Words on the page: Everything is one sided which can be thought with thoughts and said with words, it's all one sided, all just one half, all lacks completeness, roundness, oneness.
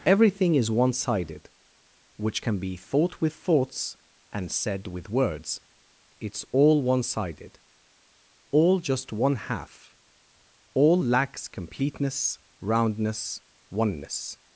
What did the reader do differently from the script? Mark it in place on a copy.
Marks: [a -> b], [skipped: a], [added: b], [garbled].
Everything is one sided which can be thought with thoughts and said with words, it's all one sided, all just one half, all lacks completeness, roundness, oneness.